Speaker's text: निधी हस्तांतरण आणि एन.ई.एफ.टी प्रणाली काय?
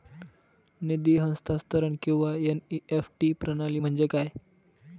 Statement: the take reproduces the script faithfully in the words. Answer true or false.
false